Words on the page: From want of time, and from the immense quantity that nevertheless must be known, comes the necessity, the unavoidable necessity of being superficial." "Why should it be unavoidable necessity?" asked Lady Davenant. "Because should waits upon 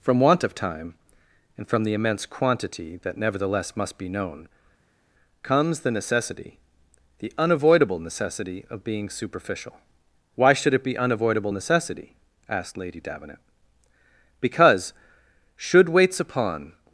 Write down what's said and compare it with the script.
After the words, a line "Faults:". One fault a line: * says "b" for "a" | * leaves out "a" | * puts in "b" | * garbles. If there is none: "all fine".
From want of time, and from the immense quantity that nevertheless must be known, comes the necessity, the unavoidable necessity of being superficial." "Why should it be unavoidable necessity?" asked Lady Davenant. "Because should waits upon
Faults:
all fine